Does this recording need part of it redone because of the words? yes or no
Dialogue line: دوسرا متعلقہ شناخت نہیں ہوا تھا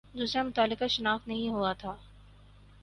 no